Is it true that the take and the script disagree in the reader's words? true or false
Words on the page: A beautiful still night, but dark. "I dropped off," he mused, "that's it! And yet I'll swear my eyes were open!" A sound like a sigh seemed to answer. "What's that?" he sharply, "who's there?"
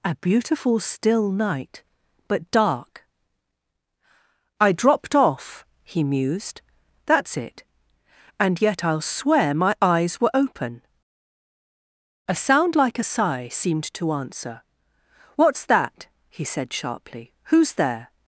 true